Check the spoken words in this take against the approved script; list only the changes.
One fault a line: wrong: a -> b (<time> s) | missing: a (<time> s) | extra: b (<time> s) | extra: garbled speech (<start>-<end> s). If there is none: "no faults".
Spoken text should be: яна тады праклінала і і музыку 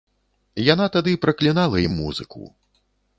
no faults